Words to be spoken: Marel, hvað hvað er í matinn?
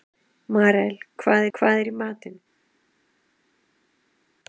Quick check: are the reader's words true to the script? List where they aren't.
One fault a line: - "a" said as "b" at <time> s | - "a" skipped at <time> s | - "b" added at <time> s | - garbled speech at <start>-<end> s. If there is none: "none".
none